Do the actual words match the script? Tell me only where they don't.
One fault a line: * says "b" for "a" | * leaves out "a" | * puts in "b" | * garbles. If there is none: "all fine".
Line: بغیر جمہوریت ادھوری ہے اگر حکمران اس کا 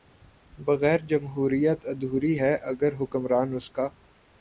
all fine